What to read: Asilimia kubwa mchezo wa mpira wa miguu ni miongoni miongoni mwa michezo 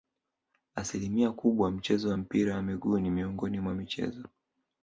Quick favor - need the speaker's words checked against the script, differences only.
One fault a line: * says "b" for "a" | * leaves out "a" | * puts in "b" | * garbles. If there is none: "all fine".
* leaves out "miongoni"